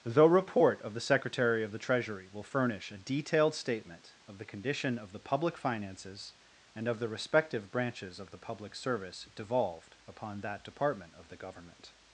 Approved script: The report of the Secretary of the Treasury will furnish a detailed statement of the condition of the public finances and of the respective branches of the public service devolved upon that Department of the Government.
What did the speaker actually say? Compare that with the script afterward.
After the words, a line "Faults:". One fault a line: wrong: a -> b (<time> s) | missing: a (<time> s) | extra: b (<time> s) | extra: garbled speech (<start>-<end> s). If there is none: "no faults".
The report of the Secretary of the Treasury will furnish a detailed statement of the condition of the public finances and of the respective branches of the public service devolved upon that Department of the Government.
Faults:
no faults